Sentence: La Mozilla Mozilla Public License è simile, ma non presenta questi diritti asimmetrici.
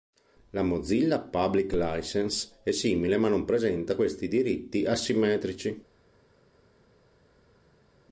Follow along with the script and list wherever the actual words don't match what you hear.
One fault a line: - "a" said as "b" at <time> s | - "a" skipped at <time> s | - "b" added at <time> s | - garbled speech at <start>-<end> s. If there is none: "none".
- "Mozilla" skipped at 1.2 s